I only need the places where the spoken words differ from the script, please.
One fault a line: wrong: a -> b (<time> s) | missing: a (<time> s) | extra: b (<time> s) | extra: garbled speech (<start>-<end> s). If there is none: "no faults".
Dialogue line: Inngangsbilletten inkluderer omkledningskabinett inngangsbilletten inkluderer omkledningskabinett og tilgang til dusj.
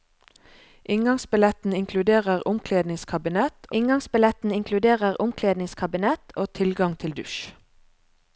no faults